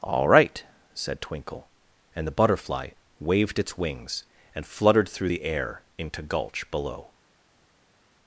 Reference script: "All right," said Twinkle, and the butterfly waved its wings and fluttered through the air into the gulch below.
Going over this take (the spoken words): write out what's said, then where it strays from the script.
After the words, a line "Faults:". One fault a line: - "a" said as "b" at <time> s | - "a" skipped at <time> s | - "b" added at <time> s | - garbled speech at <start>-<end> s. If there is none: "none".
"All right," said Twinkle, and the butterfly waved its wings and fluttered through the air into gulch below.
Faults:
- "the" skipped at 6.2 s